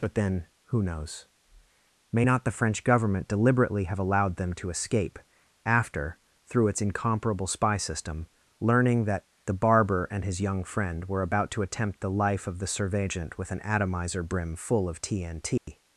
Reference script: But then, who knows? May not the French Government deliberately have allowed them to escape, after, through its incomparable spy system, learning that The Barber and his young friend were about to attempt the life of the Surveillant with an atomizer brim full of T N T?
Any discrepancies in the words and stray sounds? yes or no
yes